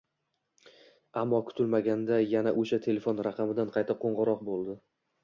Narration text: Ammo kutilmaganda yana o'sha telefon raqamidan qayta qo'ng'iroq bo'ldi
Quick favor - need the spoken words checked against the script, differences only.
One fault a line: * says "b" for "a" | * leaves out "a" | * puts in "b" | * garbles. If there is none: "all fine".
all fine